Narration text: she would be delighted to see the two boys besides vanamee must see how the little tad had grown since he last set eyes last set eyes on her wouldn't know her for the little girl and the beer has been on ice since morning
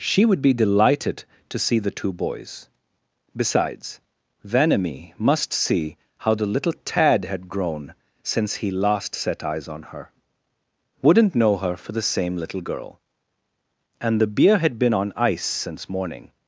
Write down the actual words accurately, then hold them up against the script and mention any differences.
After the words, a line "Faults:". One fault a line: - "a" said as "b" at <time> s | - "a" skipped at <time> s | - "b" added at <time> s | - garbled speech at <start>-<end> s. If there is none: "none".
she would be delighted to see the two boys besides vanamee must see how the little tad had grown since he last set eyes on her wouldn't know her for the same little girl and the beer had been on ice since morning
Faults:
- "last set eyes" skipped at 9.7 s
- "same" added at 12.0 s
- "has" said as "had" at 14.6 s